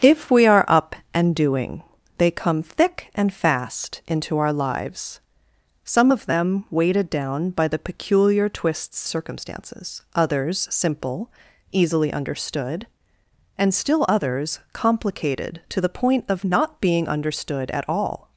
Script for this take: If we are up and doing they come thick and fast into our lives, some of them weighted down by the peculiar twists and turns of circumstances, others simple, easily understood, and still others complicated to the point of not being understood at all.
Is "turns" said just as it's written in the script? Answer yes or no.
no